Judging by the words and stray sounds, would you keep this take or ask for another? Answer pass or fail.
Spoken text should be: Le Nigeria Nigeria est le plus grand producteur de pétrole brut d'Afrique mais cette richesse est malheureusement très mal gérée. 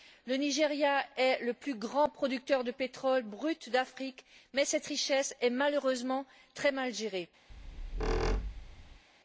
fail